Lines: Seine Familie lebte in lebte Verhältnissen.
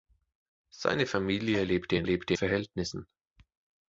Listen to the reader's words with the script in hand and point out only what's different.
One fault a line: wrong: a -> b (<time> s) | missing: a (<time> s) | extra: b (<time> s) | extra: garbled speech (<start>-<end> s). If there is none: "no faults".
no faults